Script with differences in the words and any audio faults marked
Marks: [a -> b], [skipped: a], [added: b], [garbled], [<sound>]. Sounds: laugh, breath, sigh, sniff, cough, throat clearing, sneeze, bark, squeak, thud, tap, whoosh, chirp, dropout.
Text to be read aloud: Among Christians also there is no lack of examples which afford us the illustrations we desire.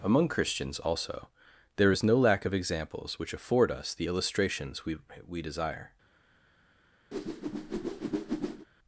Among Christians also there is no lack of examples which afford us the illustrations we [added: we] desire. [whoosh]